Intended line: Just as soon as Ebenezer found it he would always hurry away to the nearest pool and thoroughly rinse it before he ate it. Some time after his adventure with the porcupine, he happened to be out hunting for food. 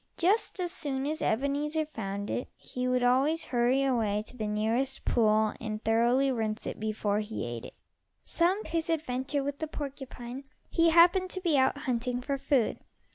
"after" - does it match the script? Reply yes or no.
no